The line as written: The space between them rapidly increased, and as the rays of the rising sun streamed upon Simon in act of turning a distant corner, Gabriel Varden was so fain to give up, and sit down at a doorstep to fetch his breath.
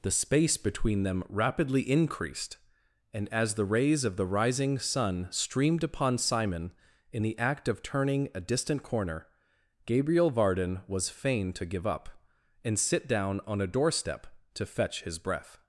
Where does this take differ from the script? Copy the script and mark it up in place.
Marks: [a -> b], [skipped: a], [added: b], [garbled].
The space between them rapidly increased, and as the rays of the rising sun streamed upon Simon in [added: the] act of turning a distant corner, Gabriel Varden was [skipped: so] fain to give up, and sit down [at -> on] a doorstep to fetch his breath.